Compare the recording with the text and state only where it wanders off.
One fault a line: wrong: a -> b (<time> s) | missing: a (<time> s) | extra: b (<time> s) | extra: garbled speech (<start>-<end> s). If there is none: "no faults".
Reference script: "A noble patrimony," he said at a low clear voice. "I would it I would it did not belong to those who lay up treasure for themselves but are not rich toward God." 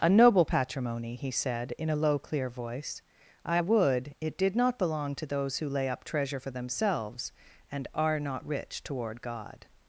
wrong: at -> in (1.8 s)
missing: I would it (4.4 s)
wrong: but -> and (7.7 s)